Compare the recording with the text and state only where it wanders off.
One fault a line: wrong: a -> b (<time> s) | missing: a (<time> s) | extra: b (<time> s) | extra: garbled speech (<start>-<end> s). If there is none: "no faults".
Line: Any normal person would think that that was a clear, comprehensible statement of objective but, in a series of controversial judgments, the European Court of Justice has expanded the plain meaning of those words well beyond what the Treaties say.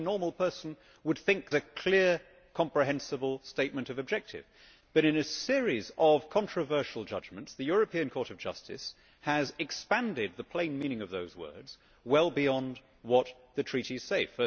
missing: that that was (1.5 s)